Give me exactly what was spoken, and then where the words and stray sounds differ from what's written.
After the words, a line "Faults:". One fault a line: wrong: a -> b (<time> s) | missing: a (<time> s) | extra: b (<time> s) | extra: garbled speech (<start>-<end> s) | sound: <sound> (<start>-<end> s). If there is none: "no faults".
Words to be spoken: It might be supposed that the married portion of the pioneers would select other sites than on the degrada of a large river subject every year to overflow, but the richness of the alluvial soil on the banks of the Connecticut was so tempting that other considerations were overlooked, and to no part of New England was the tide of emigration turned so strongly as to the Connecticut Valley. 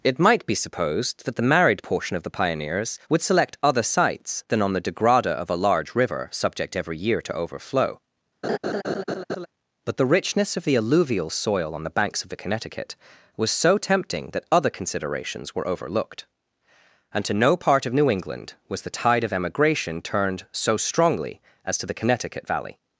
It might be supposed that the married portion of the pioneers would select other sites than on the degrada of a large river subject every year to overflow, but the richness of the alluvial soil on the banks of the Connecticut was so tempting that other considerations were overlooked, and to no part of New England was the tide of emigration turned so strongly as to the Connecticut Valley.
Faults:
sound: laugh (8.4-9.5 s)